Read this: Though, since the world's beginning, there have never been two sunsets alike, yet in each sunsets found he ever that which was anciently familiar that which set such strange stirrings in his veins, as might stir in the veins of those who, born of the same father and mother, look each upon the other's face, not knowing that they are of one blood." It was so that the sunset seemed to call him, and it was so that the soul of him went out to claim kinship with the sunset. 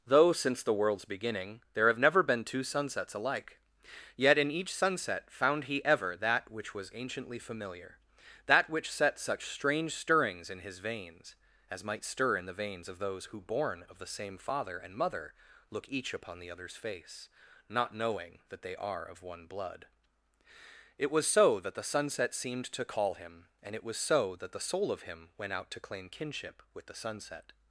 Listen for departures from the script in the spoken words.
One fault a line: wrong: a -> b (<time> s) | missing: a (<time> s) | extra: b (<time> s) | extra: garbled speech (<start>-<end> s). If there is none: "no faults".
wrong: sunsets -> sunset (4.7 s)